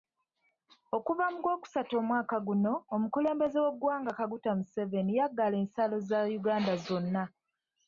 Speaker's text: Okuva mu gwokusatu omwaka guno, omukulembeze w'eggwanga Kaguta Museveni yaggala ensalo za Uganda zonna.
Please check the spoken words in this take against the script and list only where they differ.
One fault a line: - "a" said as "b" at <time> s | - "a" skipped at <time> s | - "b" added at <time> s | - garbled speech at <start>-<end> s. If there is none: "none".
none